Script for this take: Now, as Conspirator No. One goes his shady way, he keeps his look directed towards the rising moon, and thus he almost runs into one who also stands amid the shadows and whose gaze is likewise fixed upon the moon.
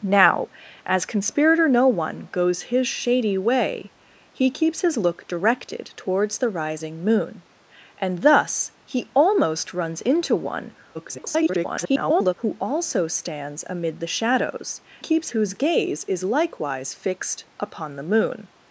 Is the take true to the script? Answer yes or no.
no